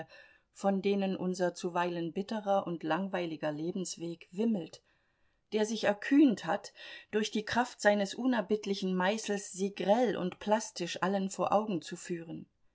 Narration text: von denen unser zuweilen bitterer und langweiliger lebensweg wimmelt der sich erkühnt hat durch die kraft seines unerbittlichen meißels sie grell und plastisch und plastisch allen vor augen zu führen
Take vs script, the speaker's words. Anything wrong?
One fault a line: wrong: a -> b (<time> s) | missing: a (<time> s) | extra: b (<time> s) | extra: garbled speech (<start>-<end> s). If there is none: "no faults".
missing: und plastisch (11.0 s)